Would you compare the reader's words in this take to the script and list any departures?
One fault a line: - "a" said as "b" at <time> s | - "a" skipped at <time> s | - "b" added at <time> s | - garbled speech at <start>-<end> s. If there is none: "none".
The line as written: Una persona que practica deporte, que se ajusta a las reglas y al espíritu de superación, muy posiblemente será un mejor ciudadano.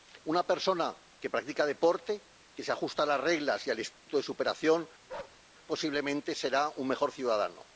- "muy" skipped at 4.9 s